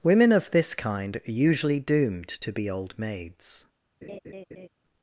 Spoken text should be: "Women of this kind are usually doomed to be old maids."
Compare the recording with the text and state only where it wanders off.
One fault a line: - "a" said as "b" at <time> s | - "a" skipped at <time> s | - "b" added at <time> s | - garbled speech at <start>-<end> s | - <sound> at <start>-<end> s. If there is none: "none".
- laugh at 4.0-4.7 s